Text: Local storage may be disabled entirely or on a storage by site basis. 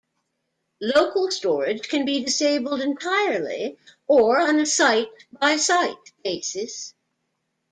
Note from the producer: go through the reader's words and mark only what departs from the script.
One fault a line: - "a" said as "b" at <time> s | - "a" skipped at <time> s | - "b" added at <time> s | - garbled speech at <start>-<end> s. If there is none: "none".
- "may" said as "can" at 1.9 s
- "storage" said as "site" at 4.7 s